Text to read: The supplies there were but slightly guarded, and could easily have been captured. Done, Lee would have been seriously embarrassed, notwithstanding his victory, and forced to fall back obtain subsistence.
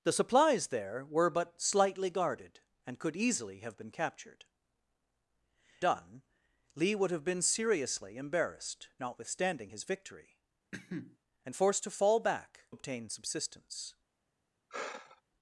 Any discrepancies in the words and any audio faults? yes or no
yes